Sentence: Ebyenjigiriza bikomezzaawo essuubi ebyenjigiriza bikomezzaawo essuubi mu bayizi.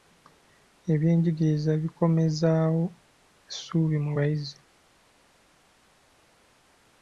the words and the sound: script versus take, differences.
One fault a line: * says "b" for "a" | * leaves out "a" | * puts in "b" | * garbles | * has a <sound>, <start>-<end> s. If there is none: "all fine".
* leaves out "ebyenjigiriza bikomezzaawo essuubi"